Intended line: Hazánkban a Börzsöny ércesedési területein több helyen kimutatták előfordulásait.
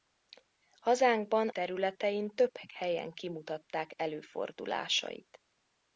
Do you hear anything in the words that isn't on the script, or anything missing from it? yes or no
yes